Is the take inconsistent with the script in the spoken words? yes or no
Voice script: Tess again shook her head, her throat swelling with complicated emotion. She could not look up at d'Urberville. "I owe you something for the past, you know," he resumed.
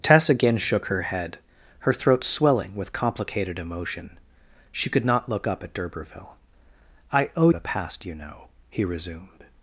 yes